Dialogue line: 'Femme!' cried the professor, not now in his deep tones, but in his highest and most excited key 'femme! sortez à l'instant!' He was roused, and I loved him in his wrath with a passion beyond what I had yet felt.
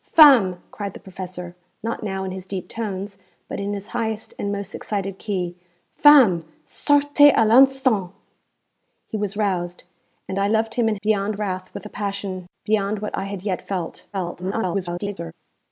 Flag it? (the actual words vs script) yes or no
yes